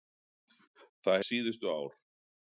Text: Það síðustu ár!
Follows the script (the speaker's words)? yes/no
yes